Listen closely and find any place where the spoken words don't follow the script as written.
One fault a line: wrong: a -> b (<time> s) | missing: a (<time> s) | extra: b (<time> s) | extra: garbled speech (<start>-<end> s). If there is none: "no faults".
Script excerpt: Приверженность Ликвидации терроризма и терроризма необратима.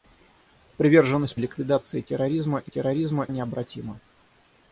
no faults